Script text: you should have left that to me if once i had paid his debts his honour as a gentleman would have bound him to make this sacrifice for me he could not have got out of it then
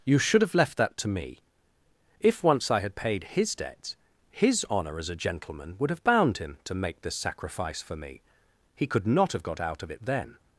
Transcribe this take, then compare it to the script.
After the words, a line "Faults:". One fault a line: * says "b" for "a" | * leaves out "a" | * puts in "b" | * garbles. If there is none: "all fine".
you should have left that to me if once i had paid his debts his honour as a gentleman would have bound him to make this sacrifice for me he could not have got out of it then
Faults:
all fine